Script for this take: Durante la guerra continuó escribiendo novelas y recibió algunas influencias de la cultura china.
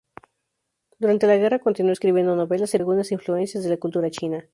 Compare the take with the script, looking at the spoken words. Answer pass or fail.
fail